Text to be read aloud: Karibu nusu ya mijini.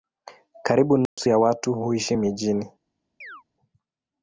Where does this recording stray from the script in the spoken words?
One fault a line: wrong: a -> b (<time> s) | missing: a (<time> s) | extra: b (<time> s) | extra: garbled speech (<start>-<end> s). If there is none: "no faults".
extra: watu huishi (1.4 s)